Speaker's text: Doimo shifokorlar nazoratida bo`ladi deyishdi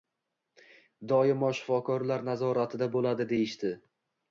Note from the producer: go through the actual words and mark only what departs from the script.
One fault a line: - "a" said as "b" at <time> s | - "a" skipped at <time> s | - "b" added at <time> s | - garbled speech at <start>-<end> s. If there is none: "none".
none